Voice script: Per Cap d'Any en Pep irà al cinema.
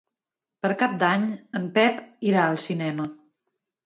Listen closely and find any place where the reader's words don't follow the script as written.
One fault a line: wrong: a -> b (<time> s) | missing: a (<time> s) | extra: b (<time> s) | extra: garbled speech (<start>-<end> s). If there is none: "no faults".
no faults